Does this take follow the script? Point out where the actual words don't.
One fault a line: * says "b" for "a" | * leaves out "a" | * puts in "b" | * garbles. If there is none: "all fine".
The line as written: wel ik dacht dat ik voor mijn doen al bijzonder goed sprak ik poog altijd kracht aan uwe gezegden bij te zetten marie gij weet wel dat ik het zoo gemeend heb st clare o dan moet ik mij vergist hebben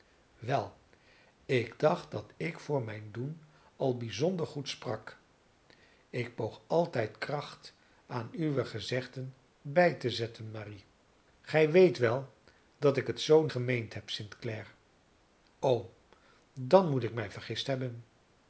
all fine